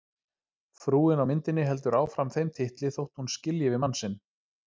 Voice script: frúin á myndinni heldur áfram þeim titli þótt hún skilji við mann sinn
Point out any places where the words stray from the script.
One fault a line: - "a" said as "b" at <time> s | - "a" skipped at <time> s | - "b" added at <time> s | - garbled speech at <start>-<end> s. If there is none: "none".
none